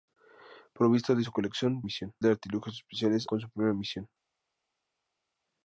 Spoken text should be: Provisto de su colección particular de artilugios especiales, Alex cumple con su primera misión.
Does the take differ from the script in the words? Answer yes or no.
yes